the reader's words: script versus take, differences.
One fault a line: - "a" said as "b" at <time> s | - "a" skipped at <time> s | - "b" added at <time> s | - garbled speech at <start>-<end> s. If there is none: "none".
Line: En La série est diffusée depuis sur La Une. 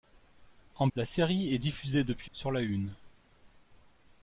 none